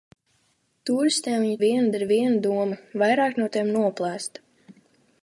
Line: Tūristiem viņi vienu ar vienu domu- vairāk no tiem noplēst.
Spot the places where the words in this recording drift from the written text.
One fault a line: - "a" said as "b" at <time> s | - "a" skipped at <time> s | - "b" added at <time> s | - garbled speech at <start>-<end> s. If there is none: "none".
none